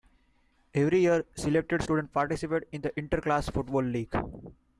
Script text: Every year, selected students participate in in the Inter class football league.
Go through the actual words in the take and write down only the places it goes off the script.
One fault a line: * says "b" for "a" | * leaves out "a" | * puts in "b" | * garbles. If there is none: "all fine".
* leaves out "in"